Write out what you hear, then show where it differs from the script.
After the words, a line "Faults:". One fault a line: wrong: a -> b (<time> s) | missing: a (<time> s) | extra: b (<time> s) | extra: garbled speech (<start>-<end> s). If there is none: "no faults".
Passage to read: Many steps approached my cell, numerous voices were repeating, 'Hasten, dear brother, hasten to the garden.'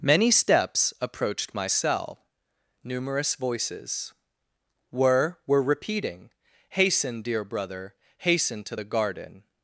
Many steps approached my cell, numerous voices were were repeating, 'Hasten, dear brother, hasten to the garden.'
Faults:
extra: were (5.4 s)